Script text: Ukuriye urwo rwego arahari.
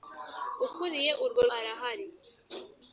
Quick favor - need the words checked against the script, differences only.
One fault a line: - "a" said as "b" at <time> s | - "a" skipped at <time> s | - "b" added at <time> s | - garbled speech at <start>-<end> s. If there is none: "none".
- "rwego" skipped at 1.4 s